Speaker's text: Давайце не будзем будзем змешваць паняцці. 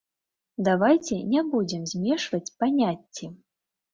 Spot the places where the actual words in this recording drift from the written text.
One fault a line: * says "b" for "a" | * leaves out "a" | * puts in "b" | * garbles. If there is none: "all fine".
* leaves out "будзем"